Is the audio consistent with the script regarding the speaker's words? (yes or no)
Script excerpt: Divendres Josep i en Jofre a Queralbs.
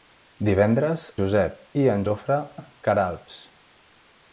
yes